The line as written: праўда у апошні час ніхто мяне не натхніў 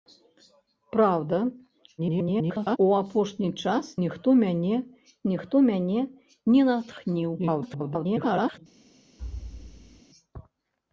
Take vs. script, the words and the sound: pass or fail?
fail